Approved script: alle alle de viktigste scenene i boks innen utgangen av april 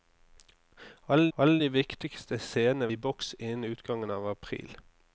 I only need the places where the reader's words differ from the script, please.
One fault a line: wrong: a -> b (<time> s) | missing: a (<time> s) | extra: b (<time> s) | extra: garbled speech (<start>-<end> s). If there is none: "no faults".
no faults